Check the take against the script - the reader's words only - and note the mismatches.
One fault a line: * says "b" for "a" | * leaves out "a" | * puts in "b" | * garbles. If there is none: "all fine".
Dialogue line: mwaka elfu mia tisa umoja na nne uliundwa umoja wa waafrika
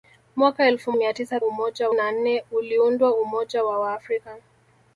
all fine